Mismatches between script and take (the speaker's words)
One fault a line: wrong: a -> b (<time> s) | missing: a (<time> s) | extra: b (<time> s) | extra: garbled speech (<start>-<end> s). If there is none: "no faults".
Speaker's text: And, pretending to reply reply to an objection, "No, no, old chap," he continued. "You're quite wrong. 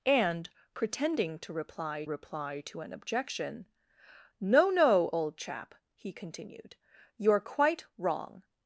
no faults